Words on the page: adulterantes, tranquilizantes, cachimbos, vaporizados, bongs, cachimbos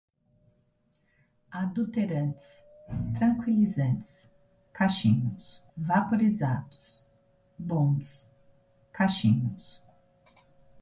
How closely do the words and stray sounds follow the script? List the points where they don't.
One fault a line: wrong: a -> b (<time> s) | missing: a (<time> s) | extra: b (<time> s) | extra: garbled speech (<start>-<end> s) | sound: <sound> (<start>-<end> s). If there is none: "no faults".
no faults